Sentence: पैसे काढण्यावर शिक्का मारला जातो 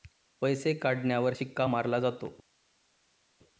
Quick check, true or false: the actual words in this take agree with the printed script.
true